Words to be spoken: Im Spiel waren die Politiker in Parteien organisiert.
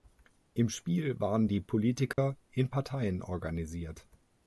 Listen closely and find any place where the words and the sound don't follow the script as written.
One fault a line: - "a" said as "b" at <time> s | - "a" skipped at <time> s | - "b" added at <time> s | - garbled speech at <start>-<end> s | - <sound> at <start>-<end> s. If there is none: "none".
- dropout at 2.1-2.2 s